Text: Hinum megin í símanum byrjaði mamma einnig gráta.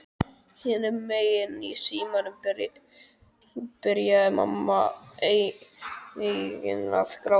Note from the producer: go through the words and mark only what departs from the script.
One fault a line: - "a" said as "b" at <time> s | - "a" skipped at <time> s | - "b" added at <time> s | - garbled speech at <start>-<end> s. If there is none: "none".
- "að" added at 6.7 s